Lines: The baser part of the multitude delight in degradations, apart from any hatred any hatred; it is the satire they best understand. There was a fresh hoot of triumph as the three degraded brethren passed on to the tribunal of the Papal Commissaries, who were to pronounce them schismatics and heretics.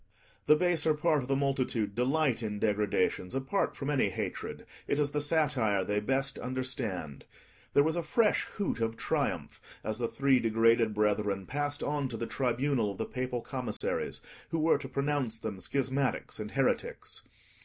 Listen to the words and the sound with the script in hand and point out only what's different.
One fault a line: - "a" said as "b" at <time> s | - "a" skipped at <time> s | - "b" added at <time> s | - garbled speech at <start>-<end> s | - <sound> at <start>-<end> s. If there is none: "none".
- "any hatred" skipped at 4.6 s
- dropout at 13.8-13.8 s